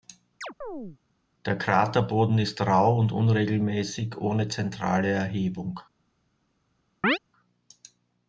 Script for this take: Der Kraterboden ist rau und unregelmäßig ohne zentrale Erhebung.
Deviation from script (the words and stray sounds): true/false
true